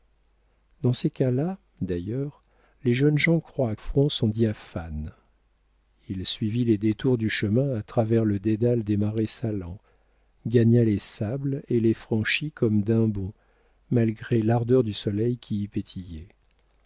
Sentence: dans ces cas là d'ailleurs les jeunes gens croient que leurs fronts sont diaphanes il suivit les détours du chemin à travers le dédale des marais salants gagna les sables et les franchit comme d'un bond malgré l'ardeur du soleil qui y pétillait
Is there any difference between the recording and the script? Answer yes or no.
yes